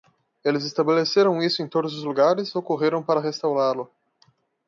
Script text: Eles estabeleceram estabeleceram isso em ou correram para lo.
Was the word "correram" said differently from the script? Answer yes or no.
no